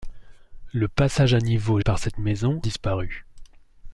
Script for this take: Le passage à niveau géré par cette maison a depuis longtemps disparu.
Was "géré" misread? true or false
true